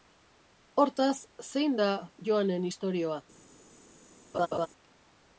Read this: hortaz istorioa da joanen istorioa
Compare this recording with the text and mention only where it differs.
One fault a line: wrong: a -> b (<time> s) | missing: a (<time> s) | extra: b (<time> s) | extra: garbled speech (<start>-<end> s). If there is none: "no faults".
wrong: istorioa -> zein (1.5 s)